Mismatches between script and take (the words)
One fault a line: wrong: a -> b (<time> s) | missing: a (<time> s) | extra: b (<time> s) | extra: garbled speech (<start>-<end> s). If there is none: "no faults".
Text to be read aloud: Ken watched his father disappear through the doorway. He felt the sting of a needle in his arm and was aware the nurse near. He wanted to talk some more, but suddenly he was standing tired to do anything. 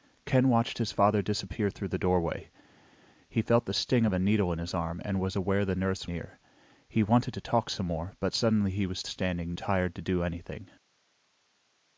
no faults